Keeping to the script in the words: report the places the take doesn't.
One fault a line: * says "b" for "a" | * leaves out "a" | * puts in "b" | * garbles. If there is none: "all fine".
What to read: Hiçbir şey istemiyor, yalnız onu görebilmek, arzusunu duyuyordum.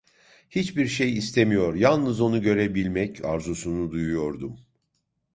all fine